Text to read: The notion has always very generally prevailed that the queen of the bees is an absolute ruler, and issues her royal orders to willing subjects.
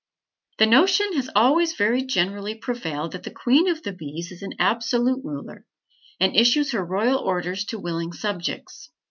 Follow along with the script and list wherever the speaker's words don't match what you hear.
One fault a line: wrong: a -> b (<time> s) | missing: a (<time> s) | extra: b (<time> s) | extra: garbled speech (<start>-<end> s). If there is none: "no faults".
no faults